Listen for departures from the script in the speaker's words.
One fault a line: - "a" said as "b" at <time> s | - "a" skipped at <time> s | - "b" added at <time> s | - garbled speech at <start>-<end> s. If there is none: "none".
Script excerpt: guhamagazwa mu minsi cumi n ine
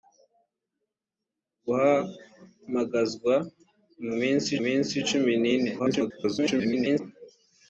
- "minsi" added at 4.6 s
- garbled speech at 5.8-7.0 s